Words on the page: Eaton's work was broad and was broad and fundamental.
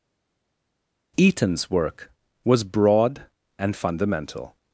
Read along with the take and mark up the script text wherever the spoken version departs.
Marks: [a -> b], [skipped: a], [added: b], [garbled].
Eaton's work was broad and [skipped: was broad and] fundamental.